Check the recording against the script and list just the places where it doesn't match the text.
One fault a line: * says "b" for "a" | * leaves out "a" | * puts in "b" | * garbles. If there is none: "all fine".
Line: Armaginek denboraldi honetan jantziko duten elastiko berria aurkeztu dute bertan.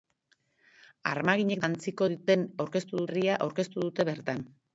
* leaves out "denboraldi honetan"
* says "aurkeztu" for "elastiko"